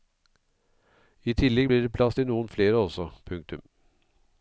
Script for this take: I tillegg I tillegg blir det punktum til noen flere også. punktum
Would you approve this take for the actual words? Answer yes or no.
no